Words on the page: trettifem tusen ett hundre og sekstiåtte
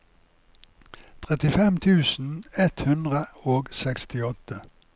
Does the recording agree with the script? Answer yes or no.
yes